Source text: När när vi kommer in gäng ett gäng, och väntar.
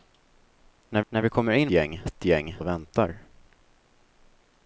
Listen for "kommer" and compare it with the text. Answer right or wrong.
right